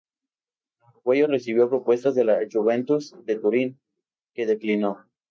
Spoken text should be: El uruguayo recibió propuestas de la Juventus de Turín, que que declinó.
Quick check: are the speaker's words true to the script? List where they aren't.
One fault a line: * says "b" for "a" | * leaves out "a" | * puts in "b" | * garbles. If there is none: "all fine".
* leaves out "que"